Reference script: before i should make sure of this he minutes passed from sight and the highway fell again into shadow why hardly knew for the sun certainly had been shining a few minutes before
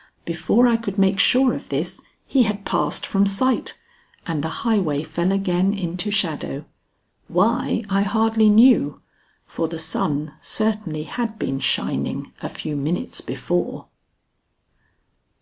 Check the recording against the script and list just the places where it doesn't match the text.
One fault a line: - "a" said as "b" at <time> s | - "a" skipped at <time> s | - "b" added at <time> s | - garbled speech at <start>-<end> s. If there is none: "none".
- "should" said as "could" at 0.8 s
- "minutes" said as "had" at 2.4 s
- "i" added at 7.9 s